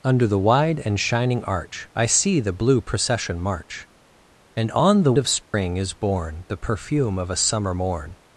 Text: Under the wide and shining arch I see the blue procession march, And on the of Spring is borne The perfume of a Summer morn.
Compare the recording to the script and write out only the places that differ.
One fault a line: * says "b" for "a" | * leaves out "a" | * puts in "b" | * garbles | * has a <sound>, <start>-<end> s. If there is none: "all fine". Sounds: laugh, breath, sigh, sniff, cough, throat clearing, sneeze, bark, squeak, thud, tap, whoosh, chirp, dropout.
* has a dropout, 5.4-5.5 s